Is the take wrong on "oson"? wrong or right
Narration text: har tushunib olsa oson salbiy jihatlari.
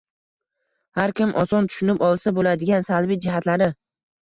wrong